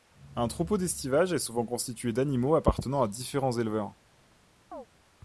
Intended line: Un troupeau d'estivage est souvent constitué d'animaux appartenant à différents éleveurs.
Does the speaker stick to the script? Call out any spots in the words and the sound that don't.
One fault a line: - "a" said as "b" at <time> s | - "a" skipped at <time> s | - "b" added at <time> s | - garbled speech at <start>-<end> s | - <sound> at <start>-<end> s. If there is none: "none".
- chirp at 4.7-4.9 s